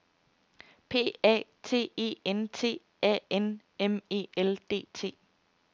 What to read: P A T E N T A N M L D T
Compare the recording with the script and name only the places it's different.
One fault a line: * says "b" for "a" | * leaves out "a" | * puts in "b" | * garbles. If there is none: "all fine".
* puts in "E"